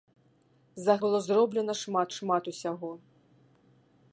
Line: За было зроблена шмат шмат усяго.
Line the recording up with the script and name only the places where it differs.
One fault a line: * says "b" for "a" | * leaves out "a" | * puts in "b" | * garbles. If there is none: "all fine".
all fine